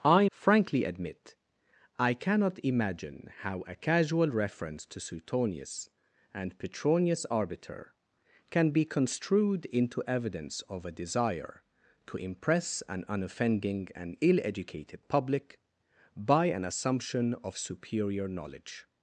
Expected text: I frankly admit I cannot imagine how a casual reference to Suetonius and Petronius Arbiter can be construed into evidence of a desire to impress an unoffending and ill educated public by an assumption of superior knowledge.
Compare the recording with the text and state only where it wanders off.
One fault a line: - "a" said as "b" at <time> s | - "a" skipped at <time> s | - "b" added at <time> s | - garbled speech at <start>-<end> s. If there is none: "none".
none